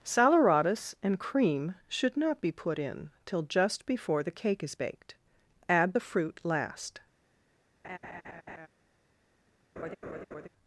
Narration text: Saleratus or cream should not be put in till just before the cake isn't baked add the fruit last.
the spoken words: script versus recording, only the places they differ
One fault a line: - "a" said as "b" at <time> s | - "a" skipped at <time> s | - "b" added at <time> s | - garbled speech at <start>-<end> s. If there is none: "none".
- "or" said as "and" at 1.0 s
- "isn't" said as "is" at 4.6 s